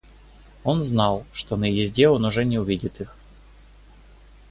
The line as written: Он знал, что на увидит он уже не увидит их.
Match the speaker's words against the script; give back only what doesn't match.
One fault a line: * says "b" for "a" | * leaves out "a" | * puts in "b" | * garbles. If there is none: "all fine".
* says "езде" for "увидит"